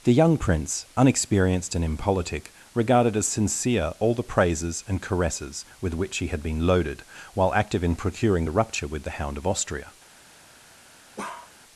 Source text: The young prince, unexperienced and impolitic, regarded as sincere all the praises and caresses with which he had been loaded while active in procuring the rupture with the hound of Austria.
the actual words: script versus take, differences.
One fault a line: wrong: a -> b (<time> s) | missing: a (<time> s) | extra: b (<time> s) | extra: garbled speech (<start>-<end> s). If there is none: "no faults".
no faults